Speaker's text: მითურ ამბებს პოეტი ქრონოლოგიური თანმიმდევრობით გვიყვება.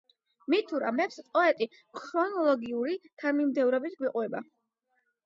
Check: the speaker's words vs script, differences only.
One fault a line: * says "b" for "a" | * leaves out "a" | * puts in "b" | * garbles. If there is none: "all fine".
all fine